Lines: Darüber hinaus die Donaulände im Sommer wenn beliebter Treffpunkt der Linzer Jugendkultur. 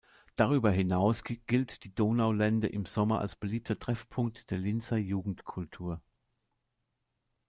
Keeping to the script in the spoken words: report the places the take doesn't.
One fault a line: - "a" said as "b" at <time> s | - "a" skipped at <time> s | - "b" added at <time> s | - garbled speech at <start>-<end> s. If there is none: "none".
- "gilt" added at 1.2 s
- "wenn" said as "als" at 3.2 s